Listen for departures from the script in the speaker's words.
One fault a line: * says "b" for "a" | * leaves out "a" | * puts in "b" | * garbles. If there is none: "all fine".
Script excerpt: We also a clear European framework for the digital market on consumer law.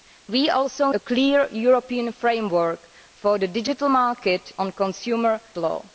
all fine